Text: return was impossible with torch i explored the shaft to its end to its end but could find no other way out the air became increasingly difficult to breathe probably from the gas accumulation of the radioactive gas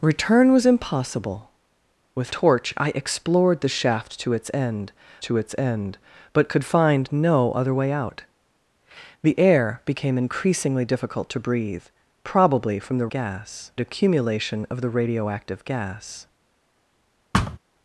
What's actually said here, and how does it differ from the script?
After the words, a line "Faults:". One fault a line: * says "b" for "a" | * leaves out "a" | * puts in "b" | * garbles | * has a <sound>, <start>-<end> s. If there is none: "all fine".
return was impossible with torch i explored the shaft to its end to its end but could find no other way out the air became increasingly difficult to breathe probably from the gas accumulation of the radioactive gas
Faults:
* has a thud, 17.3-17.6 s